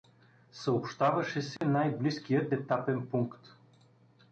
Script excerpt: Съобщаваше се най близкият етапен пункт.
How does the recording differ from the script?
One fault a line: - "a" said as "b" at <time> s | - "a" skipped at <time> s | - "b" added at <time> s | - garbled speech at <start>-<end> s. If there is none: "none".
none